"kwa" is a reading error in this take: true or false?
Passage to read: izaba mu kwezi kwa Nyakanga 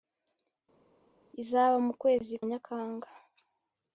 true